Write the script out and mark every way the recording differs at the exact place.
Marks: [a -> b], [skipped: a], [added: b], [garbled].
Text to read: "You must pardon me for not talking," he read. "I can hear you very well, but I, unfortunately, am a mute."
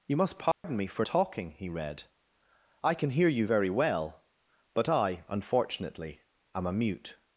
"You must pardon me for [skipped: not] talking," he read. "I can hear you very well, but I, unfortunately, am a mute."